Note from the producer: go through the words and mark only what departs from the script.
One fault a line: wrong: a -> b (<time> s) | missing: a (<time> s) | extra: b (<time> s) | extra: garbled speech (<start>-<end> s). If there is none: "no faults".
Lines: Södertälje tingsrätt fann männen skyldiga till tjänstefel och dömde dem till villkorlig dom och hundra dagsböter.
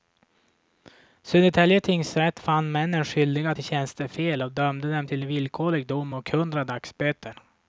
no faults